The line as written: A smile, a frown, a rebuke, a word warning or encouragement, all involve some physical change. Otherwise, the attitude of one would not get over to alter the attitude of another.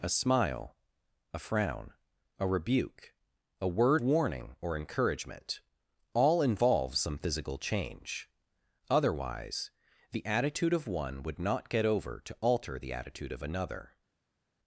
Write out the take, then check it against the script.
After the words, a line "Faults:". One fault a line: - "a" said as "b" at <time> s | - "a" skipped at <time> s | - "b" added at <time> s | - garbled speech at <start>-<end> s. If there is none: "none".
A smile, a frown, a rebuke, a word warning or encouragement, all involve some physical change. Otherwise, the attitude of one would not get over to alter the attitude of another.
Faults:
none